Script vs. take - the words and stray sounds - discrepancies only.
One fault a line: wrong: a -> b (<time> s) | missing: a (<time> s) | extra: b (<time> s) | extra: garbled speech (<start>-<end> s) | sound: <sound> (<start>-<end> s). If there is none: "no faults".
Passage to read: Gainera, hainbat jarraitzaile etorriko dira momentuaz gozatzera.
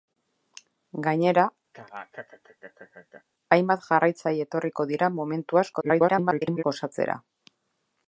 sound: laugh (1.7-3.2 s)
extra: garbled speech (5.7-6.6 s)